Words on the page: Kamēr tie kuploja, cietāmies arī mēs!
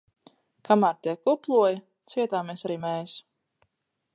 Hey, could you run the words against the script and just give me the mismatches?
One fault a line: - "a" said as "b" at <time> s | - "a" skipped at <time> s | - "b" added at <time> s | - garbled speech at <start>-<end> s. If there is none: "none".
none